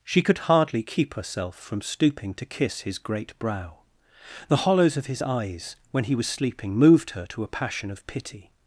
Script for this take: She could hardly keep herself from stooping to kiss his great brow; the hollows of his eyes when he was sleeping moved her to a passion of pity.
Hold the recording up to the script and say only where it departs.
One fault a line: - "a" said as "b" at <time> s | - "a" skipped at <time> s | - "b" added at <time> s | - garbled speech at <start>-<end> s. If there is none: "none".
none